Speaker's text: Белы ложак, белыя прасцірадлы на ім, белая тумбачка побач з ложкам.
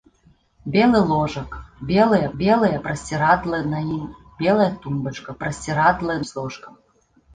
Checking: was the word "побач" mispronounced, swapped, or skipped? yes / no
yes